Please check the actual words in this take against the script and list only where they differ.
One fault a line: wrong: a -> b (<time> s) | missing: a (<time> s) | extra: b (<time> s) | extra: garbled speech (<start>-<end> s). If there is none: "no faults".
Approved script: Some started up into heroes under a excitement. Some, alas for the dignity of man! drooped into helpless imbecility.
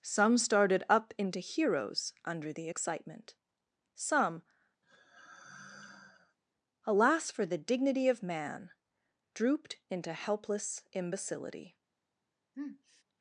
wrong: a -> the (2.5 s)